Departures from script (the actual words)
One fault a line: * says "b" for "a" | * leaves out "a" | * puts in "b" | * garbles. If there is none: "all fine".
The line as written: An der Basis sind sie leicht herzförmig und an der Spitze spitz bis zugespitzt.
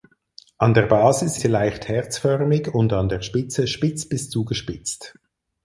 * leaves out "sind"